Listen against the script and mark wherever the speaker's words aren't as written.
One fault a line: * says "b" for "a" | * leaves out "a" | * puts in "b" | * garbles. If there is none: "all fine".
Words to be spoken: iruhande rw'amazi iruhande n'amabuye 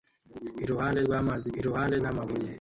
all fine